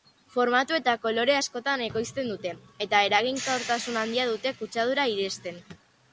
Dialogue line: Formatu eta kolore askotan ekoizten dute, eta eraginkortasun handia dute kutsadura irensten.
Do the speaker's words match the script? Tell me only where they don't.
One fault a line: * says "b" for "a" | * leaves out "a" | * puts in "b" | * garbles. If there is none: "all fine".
all fine